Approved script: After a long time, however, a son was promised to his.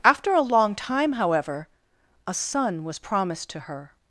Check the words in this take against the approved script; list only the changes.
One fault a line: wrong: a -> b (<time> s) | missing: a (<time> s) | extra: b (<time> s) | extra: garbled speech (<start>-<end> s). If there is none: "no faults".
wrong: his -> her (3.6 s)